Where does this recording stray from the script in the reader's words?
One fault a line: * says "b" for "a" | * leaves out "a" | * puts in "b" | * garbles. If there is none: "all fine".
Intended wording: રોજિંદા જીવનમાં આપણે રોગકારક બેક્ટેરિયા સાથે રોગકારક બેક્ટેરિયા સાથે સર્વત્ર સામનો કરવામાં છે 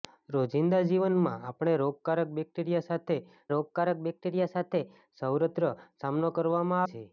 all fine